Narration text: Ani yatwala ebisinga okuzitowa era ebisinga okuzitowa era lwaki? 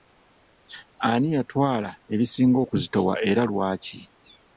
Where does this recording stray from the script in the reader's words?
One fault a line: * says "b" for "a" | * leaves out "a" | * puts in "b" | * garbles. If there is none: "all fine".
* leaves out "ebisinga okuzitowa era"